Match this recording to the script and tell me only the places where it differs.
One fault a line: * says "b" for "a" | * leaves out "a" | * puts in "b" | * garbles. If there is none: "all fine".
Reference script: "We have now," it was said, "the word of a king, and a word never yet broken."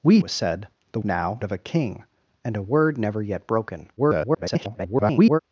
* leaves out "have now it"
* says "now" for "word"
* garbles